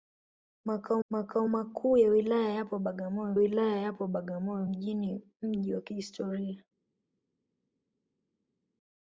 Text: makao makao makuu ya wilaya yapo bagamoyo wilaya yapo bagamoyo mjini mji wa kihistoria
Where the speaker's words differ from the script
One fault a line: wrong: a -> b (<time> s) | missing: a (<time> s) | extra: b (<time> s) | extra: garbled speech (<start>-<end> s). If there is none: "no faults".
no faults